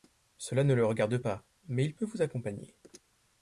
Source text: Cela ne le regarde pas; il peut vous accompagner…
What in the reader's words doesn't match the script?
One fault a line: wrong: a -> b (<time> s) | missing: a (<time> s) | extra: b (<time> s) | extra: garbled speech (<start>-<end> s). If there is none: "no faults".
extra: mais (1.7 s)